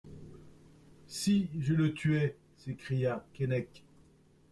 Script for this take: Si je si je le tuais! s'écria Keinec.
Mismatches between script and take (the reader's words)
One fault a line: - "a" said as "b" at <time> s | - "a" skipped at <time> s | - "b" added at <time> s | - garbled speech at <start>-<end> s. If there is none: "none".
- "si je" skipped at 1.8 s